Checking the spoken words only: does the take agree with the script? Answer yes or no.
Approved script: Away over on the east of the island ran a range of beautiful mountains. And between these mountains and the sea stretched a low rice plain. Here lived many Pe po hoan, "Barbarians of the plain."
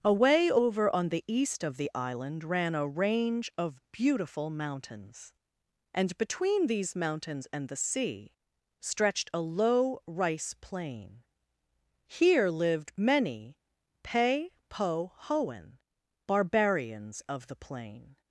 yes